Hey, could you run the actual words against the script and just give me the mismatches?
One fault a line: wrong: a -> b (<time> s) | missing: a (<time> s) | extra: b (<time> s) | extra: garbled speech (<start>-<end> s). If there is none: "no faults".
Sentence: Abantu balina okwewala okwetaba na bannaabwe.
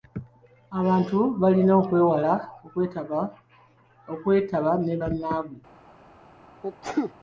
wrong: na -> ne (4.8 s)